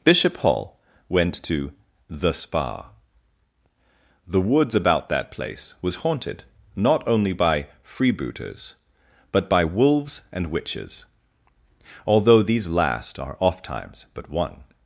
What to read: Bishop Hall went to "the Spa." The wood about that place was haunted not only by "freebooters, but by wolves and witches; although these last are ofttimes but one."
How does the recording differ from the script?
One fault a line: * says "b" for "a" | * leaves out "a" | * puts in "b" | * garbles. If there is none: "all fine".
* says "woods" for "wood"